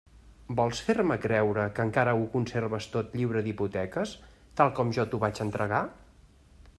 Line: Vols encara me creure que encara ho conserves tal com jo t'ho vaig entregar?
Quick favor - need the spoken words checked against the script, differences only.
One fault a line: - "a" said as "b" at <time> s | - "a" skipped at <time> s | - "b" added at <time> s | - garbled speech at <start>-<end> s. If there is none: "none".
- "encara" said as "fer" at 0.8 s
- "tot lliure d'hipoteques" added at 3.0 s